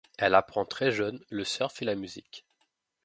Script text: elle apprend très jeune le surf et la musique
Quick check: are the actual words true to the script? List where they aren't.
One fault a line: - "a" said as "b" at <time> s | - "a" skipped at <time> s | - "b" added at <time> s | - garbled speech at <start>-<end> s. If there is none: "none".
none